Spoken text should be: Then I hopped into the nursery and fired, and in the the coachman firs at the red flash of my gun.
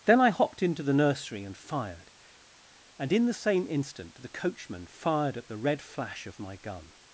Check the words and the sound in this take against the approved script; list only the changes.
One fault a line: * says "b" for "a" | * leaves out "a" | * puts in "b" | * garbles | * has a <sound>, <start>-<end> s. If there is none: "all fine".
* puts in "same instant"
* says "fired" for "firs"